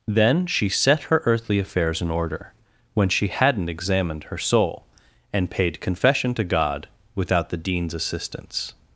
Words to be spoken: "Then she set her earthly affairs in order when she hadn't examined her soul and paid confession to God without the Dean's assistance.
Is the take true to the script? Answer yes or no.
yes